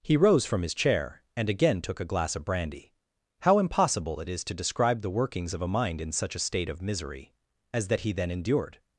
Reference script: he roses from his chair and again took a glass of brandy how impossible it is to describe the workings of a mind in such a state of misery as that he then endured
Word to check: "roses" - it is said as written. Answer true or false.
false